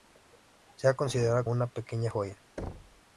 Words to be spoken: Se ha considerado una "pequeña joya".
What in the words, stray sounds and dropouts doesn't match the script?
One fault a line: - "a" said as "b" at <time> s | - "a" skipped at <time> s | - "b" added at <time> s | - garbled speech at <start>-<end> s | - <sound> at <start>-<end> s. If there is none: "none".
- thud at 2.6-3.0 s